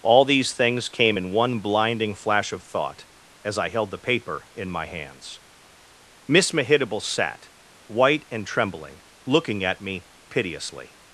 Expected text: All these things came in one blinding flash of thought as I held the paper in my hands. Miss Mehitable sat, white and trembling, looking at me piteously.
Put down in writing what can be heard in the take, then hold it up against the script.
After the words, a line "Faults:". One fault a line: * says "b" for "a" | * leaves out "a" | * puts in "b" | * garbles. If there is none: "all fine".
All these things came in one blinding flash of thought as I held the paper in my hands. Miss Mehitable sat, white and trembling, looking at me piteously.
Faults:
all fine